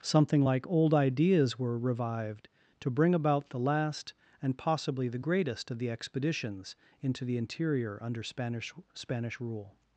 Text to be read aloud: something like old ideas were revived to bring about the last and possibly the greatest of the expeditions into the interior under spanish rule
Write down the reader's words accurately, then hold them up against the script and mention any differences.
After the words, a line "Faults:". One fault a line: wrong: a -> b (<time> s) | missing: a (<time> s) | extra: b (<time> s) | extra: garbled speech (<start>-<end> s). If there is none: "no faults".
something like old ideas were revived to bring about the last and possibly the greatest of the expeditions into the interior under spanish spanish rule
Faults:
extra: spanish (8.9 s)